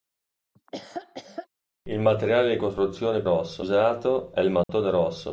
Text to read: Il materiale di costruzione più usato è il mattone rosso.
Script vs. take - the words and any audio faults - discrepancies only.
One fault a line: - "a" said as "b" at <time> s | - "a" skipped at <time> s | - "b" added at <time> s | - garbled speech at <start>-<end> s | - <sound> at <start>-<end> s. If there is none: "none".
- laugh at 0.6-1.5 s
- "più" said as "rosso" at 3.2 s
- dropout at 4.6-4.7 s